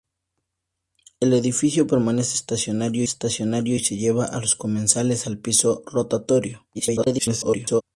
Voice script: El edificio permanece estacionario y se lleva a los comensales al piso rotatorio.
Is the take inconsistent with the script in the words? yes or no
yes